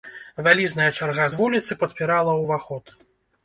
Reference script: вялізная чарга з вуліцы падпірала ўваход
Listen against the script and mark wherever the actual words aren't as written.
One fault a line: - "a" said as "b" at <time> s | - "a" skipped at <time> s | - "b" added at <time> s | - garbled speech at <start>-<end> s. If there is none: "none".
none